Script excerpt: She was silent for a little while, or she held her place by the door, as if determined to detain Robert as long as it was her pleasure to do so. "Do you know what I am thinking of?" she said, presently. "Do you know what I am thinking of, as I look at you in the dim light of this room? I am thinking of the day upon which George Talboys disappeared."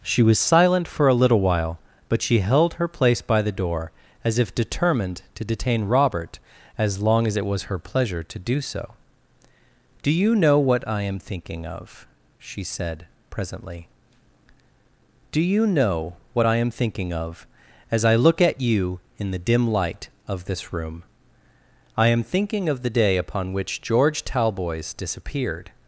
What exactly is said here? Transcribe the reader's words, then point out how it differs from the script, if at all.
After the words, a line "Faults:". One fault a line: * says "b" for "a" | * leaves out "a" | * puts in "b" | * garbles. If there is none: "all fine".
She was silent for a little while, but she held her place by the door, as if determined to detain Robert as long as it was her pleasure to do so. "Do you know what I am thinking of?" she said, presently. "Do you know what I am thinking of, as I look at you in the dim light of this room? I am thinking of the day upon which George Talboys disappeared."
Faults:
* says "but" for "or"